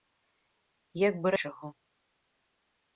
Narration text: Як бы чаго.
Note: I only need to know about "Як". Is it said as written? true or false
true